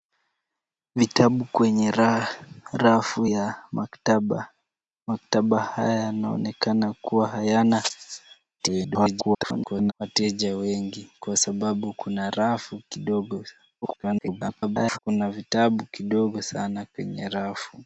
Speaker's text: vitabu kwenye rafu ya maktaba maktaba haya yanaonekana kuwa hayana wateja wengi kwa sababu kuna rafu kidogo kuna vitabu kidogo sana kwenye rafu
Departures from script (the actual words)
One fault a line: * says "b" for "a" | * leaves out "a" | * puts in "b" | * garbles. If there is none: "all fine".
* garbles
* garbles